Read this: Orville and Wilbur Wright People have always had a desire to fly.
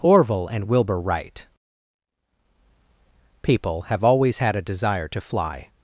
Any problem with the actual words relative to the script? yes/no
no